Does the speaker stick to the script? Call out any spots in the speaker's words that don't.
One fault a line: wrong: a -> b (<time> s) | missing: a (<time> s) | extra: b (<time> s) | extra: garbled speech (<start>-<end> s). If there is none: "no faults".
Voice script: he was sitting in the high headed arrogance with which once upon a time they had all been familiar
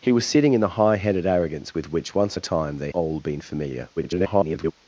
missing: upon (2.4 s)
missing: had (2.9 s)
extra: garbled speech (4.0-4.7 s)